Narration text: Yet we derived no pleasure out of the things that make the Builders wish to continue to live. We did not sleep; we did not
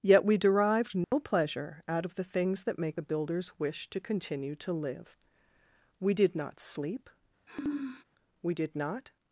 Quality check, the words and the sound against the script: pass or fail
fail